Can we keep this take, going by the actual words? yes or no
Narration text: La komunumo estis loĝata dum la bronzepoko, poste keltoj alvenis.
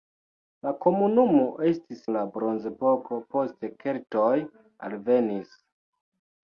no